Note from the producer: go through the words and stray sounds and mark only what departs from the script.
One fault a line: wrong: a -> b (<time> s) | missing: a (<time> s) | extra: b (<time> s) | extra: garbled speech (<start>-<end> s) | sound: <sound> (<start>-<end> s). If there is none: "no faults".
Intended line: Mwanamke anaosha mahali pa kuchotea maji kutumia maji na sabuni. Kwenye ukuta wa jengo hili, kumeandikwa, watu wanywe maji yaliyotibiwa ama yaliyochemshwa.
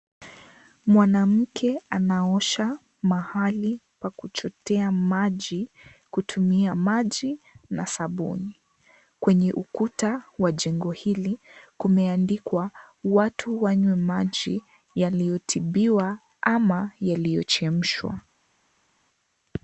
no faults